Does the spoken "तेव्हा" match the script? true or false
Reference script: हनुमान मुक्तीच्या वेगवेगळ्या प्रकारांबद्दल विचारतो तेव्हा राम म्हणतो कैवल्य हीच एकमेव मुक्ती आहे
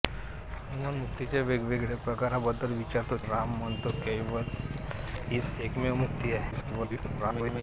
false